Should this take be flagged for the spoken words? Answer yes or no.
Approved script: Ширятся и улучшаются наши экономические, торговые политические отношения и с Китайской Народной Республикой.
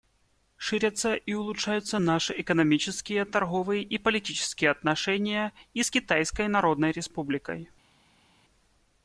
yes